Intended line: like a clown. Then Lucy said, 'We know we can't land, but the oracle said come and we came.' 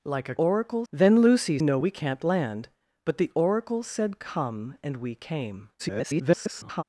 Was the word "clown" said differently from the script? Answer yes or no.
yes